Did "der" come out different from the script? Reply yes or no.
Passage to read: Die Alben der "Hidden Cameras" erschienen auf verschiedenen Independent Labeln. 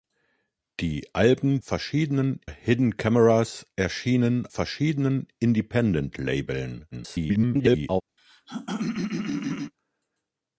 yes